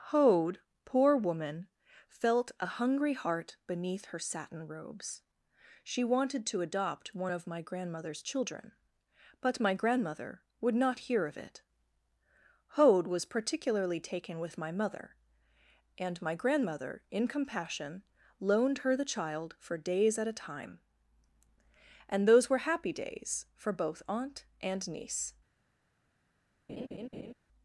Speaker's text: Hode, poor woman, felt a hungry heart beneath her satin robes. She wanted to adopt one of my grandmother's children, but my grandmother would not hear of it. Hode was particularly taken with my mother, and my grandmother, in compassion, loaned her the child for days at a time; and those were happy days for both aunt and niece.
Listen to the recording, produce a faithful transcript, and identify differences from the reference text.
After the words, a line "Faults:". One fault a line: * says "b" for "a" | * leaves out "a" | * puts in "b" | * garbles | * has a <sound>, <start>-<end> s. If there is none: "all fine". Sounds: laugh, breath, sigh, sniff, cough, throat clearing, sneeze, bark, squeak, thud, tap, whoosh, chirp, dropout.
Hode, poor woman, felt a hungry heart beneath her satin robes. She wanted to adopt one of my grandmother's children, but my grandmother would not hear of it. Hode was particularly taken with my mother, and my grandmother, in compassion, loaned her the child for days at a time; and those were happy days for both aunt and niece.
Faults:
* has a laugh, 26.7-27.3 s